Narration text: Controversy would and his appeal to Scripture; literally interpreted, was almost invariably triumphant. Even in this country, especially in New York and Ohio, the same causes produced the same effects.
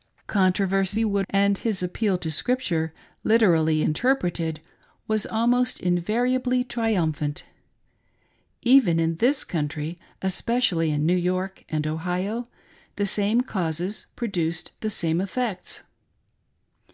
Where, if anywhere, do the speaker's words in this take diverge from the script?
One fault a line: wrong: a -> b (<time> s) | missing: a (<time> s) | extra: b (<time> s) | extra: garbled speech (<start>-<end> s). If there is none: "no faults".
no faults